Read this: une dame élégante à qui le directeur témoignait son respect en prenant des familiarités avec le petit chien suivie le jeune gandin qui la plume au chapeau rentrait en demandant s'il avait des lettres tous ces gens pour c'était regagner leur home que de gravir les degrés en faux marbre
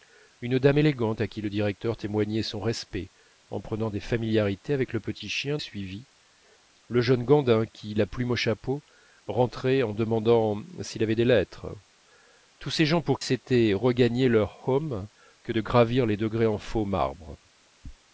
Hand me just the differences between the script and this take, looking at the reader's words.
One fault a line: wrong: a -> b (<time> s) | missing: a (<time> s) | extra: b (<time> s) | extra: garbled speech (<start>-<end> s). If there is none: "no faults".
no faults